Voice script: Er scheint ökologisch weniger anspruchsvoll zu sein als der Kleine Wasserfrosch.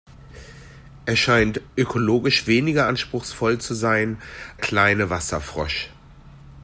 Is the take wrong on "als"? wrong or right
wrong